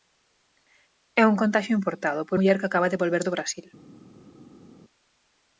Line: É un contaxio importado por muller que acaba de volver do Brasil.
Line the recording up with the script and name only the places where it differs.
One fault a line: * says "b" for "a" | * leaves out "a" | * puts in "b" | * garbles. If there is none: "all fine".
all fine